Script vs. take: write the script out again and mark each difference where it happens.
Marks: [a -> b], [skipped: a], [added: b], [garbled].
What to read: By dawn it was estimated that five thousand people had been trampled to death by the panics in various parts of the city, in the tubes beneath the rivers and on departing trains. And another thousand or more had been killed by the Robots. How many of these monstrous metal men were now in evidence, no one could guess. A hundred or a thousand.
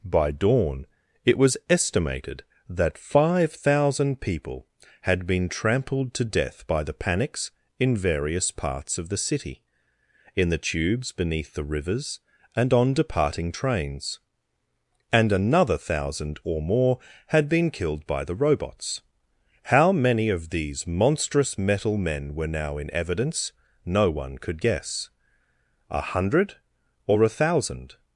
By dawn it was estimated that five thousand people had been trampled to death by the panics in various parts of the city, in the tubes beneath the rivers and on departing trains. And another thousand or more had been killed by the Robots. How many of these monstrous metal men were now in evidence, no one could guess. A hundred or a thousand.